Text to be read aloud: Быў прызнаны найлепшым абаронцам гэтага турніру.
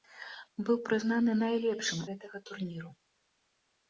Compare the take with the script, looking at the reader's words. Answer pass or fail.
fail